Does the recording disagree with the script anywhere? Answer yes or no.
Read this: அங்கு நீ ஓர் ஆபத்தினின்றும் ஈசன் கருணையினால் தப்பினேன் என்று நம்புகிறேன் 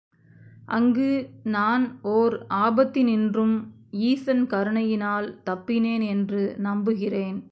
yes